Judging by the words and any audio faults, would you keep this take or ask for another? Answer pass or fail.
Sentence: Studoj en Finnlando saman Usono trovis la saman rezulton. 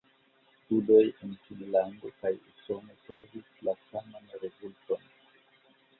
fail